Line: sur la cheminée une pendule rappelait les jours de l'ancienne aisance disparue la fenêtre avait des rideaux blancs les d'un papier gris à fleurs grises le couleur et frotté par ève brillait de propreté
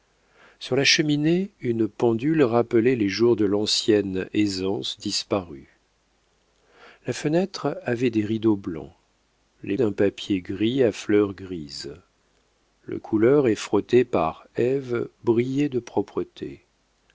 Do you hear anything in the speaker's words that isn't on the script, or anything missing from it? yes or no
no